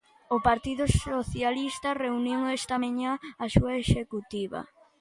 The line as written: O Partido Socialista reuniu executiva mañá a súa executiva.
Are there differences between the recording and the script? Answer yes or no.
yes